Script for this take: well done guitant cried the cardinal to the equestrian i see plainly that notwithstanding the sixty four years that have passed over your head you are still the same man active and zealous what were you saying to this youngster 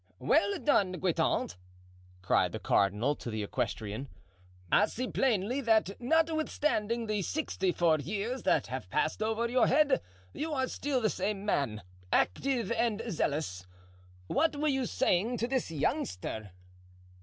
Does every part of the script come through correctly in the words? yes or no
yes